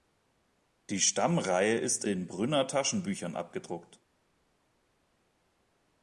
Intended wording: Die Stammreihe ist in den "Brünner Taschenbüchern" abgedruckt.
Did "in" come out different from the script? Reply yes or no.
yes